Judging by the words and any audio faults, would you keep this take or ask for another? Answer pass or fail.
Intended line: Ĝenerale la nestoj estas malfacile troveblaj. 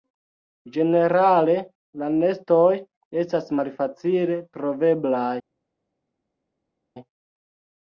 pass